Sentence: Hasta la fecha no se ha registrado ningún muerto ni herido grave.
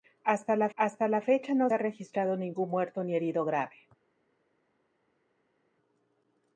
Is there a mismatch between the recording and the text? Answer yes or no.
yes